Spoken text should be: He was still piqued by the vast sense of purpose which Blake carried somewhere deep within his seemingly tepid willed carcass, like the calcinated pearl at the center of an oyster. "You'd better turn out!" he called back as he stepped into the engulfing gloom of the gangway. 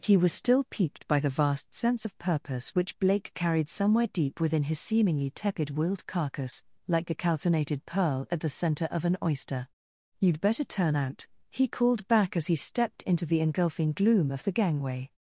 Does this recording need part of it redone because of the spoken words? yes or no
yes